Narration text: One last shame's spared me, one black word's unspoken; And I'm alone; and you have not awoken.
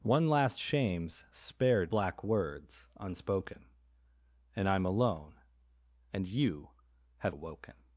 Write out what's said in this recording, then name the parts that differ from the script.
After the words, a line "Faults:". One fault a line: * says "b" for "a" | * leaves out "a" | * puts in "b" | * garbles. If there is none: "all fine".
One last shame's spared black word's unspoken; And I'm alone; and you have awoken.
Faults:
* leaves out "me one"
* leaves out "not"